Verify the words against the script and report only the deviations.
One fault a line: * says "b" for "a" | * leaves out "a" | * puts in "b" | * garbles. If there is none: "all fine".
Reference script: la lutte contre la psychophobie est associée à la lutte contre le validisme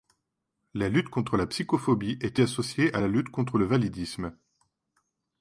all fine